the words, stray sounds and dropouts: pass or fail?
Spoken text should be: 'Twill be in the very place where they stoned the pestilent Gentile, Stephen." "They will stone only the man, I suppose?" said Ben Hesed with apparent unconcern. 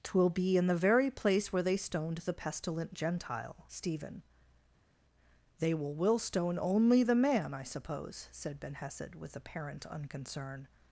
fail